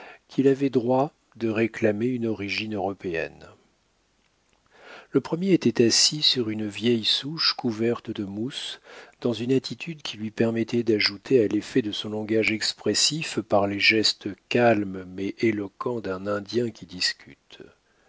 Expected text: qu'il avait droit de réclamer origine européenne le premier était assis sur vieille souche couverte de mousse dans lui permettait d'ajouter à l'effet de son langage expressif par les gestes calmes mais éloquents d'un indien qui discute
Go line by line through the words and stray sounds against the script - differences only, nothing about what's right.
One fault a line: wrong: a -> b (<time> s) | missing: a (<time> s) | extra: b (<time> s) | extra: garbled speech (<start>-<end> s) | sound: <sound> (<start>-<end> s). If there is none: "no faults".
extra: une (2.1 s)
extra: une (6.5 s)
extra: une attitude qui (9.3 s)